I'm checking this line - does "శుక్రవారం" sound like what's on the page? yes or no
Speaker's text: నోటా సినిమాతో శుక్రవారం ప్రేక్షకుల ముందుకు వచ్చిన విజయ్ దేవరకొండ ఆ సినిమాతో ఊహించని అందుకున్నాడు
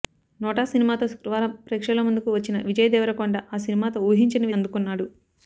yes